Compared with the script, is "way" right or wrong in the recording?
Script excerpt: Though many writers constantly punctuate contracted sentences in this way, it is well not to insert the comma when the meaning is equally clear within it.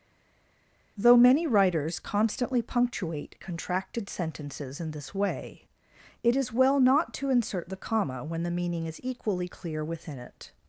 right